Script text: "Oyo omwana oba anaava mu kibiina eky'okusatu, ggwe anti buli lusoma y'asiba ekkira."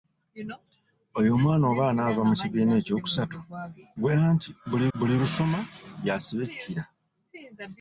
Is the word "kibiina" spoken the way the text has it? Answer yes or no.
yes